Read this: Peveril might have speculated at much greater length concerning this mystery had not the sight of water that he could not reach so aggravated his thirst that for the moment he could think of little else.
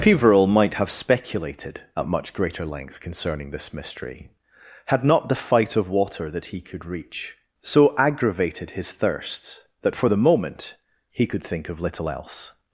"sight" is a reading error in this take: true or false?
true